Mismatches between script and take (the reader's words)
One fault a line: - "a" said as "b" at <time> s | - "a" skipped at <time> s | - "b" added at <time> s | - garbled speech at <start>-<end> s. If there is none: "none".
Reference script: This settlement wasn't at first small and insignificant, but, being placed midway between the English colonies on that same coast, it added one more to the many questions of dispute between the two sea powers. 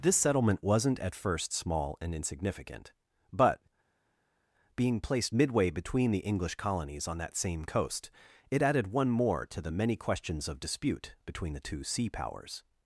none